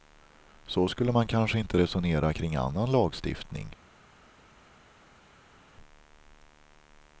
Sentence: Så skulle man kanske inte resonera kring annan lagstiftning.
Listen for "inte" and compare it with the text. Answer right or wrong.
right